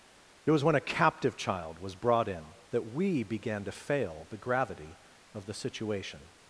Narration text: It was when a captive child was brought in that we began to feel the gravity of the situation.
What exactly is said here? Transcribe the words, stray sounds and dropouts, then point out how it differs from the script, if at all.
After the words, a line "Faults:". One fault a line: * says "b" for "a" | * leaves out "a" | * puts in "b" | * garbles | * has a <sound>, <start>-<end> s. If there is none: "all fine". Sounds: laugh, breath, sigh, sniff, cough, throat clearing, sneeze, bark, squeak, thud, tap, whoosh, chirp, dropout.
It was when a captive child was brought in that we began to fail the gravity of the situation.
Faults:
* says "fail" for "feel"